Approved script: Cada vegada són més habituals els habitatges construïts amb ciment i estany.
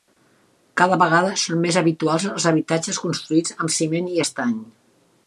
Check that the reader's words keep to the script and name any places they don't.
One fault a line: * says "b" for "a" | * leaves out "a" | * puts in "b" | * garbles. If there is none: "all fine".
all fine